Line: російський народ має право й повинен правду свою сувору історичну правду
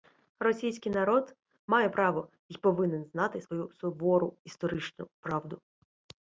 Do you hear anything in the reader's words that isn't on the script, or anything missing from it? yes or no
yes